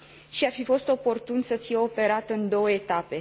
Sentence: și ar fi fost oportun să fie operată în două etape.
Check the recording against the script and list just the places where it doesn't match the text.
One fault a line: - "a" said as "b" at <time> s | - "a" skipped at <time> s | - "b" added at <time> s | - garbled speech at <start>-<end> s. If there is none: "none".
none